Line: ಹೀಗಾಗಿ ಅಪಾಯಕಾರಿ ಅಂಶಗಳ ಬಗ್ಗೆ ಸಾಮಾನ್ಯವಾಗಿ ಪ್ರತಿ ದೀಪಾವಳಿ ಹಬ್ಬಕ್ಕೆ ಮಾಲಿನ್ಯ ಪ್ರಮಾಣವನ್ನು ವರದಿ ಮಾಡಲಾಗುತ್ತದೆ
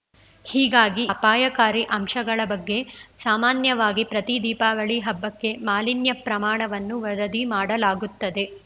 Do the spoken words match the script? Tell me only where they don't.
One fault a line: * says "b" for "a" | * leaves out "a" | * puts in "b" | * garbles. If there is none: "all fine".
all fine